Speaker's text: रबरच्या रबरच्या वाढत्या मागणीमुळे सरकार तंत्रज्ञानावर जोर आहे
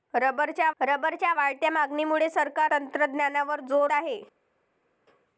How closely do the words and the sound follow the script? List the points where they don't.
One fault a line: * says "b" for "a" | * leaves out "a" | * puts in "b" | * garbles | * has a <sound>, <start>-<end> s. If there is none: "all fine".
all fine